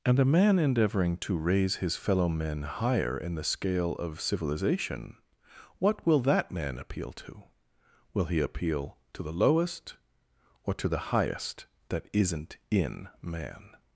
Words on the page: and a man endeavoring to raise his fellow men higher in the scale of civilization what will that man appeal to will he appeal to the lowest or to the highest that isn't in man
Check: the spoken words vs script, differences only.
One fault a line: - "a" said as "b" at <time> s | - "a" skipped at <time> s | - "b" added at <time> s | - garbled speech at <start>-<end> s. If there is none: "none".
none